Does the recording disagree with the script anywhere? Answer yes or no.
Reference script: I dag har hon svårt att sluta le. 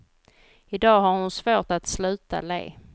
no